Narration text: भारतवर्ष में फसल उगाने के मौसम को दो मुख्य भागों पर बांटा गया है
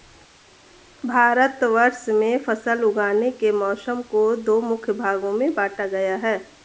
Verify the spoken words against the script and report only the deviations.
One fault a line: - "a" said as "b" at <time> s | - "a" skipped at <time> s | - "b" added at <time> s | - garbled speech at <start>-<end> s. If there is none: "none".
- "पर" said as "में" at 5.3 s